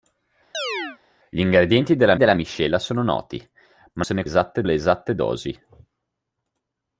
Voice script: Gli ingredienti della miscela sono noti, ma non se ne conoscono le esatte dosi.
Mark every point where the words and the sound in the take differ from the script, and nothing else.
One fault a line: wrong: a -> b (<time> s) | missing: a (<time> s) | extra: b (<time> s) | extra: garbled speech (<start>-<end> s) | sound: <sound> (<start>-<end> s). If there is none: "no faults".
sound: chirp (0.5-1.0 s)
extra: della (2.2 s)
missing: non (4.0 s)
wrong: conoscono -> esatte (4.2 s)